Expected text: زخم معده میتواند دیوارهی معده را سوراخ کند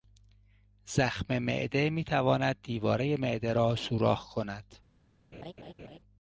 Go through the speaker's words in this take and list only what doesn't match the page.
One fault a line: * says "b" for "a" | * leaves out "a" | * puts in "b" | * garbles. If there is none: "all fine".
all fine